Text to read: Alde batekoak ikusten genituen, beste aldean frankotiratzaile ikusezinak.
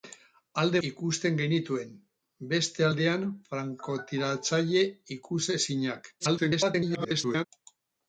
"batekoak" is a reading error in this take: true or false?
true